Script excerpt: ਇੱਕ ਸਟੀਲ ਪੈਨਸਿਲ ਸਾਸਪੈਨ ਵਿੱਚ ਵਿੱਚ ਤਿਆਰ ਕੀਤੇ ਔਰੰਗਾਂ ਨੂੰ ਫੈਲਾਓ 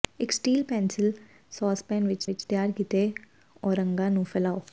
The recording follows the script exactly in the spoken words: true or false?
true